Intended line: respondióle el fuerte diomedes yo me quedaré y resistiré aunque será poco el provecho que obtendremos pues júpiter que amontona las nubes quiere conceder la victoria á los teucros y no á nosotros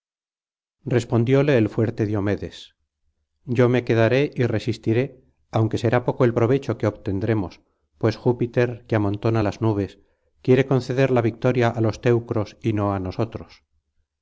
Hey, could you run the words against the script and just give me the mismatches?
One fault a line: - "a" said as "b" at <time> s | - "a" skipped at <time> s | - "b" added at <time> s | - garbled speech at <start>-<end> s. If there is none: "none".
none